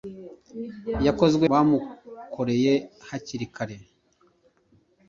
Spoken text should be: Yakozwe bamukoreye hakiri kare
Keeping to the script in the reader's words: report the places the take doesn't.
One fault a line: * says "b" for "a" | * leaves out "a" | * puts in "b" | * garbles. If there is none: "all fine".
all fine